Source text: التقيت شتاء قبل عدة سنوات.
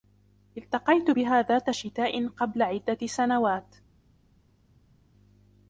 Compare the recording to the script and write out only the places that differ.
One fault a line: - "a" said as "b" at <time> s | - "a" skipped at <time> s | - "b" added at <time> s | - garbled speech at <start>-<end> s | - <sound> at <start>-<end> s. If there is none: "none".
- "بها ذات" added at 1.1 s